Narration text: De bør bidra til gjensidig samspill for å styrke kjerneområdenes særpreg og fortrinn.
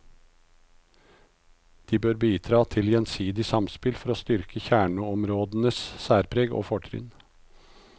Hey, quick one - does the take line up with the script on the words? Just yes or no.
yes